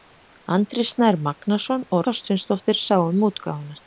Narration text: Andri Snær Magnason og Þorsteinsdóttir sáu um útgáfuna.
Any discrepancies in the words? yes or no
no